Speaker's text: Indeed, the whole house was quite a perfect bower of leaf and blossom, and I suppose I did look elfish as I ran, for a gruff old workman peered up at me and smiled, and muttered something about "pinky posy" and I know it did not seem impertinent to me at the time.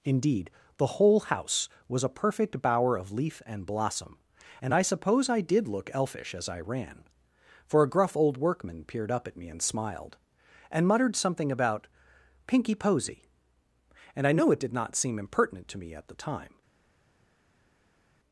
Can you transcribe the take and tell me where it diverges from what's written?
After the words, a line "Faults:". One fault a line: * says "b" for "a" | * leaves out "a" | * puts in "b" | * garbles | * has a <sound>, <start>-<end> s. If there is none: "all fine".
Indeed, the whole house was a perfect bower of leaf and blossom, and I suppose I did look elfish as I ran, for a gruff old workman peered up at me and smiled, and muttered something about "pinky posy" and I know it did not seem impertinent to me at the time.
Faults:
* leaves out "quite"